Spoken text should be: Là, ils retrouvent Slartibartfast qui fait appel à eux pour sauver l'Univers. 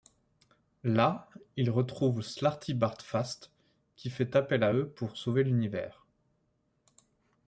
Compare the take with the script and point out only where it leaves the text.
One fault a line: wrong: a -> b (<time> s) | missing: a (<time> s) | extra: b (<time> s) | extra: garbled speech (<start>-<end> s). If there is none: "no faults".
no faults